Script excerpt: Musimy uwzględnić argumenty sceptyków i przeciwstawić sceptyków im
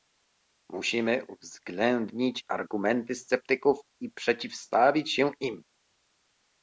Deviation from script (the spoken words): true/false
true